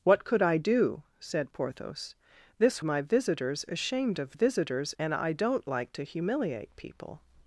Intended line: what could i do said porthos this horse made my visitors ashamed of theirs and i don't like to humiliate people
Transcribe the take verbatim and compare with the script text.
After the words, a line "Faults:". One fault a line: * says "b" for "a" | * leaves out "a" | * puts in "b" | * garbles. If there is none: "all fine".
what could i do said porthos this my visitors ashamed of visitors and i don't like to humiliate people
Faults:
* leaves out "horse made"
* says "visitors" for "theirs"